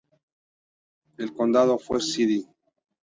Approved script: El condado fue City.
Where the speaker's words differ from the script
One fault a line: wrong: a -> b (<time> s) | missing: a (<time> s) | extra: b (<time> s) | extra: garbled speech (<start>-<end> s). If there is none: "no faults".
no faults